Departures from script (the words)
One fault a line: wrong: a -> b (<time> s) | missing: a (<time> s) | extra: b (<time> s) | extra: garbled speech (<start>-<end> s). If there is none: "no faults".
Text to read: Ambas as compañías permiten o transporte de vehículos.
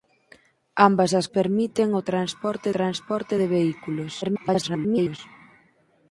missing: compañías (1.3 s)
extra: transporte (2.8 s)
extra: garbled speech (4.2-5.2 s)